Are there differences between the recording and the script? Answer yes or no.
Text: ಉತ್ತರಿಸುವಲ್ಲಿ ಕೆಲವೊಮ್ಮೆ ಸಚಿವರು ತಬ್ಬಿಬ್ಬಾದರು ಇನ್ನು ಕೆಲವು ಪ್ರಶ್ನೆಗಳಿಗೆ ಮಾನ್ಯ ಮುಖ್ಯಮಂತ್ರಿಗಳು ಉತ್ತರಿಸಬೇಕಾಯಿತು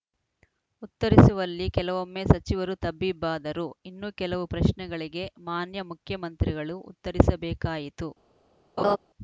no